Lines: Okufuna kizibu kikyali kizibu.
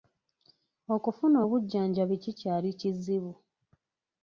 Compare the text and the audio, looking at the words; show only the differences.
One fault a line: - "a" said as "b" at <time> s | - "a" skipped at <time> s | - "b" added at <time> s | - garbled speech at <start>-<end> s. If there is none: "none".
- "kizibu" said as "obujjanjabi" at 1.4 s